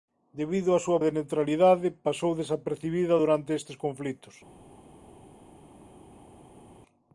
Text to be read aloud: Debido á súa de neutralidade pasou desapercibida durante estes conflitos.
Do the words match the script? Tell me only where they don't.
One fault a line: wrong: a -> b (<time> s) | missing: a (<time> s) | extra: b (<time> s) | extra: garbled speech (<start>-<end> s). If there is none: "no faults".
no faults